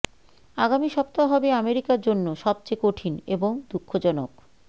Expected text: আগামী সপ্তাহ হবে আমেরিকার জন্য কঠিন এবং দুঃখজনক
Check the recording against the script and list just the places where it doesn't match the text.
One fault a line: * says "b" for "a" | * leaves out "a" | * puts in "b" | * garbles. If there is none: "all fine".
* puts in "সবচেয়ে"